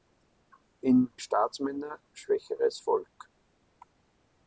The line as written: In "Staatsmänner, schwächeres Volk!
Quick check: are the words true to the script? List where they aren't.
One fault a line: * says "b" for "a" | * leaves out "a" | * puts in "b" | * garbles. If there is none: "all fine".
all fine